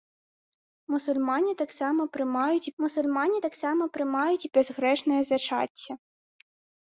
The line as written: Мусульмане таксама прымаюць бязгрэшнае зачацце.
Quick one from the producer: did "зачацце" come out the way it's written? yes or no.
yes